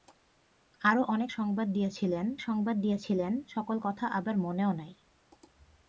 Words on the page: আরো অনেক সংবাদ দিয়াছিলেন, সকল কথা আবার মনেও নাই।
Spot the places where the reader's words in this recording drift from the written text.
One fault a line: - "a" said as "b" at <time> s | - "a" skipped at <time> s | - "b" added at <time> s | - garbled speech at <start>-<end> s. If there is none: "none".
- "সংবাদ দিয়াছিলেন" added at 2.4 s